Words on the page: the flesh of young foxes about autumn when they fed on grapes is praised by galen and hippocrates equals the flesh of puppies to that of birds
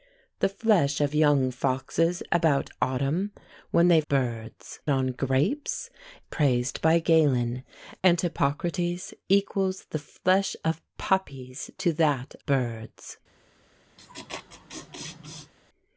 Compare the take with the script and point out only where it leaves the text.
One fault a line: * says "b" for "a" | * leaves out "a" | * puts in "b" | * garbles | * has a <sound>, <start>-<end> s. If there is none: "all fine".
* says "birds" for "fed"
* leaves out "is"
* leaves out "of"
* has a laugh, 14.0-15.5 s